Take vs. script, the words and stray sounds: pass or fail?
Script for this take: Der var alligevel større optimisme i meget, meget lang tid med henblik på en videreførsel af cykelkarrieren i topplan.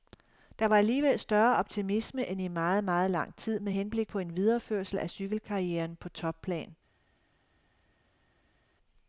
fail